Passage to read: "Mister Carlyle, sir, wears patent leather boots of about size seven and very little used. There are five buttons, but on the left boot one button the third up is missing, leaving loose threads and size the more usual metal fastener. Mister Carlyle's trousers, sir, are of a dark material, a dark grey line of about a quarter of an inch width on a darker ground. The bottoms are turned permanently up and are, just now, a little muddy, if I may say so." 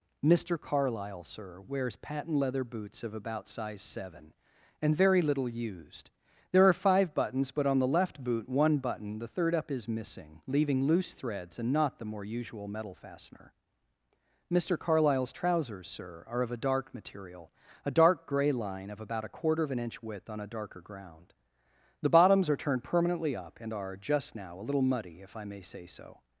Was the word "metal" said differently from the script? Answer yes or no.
no